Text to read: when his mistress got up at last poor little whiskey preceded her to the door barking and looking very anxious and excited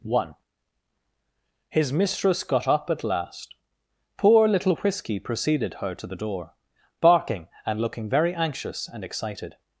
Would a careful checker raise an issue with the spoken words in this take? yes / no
yes